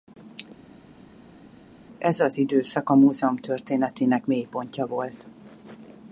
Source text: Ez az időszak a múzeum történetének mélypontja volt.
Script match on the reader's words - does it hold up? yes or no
yes